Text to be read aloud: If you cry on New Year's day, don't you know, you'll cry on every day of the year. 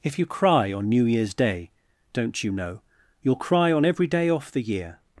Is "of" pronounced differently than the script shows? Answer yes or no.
yes